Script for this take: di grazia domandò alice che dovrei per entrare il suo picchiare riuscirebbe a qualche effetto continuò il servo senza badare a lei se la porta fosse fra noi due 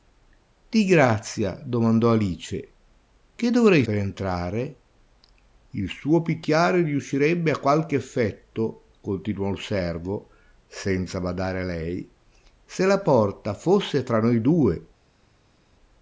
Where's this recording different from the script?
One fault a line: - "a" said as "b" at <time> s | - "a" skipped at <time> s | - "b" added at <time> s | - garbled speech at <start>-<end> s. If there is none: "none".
none